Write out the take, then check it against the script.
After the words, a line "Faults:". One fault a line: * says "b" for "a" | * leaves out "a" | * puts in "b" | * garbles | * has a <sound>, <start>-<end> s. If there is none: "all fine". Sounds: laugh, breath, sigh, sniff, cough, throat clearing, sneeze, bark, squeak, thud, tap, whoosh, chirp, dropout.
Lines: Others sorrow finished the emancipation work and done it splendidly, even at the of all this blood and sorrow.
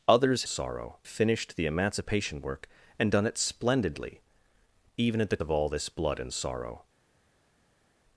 Others sorrow finished the emancipation work and done it splendidly, even at the of all this blood and sorrow.
Faults:
all fine